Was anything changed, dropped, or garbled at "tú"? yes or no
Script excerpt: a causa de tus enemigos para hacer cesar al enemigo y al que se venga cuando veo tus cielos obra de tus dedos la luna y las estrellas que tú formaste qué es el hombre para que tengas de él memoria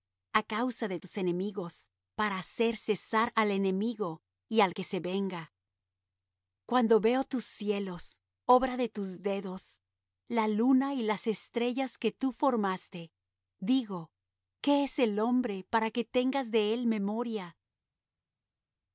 no